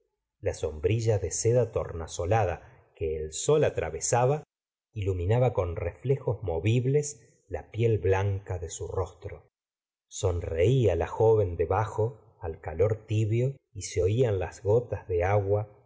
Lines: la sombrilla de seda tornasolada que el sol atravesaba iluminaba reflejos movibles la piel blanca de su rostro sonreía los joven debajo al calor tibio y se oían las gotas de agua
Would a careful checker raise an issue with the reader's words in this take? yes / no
yes